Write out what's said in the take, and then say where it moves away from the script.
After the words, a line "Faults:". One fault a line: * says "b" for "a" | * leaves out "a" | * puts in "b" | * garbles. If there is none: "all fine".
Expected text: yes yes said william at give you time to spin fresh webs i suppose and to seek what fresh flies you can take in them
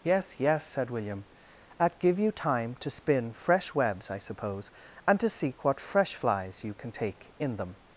yes yes said william at give you time to spin fresh webs i suppose and to seek what fresh flies you can take in them
Faults:
all fine